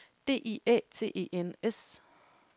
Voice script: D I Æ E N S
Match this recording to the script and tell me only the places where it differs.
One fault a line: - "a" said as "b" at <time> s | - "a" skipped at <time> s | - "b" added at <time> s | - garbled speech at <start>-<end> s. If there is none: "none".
- "T" added at 0.9 s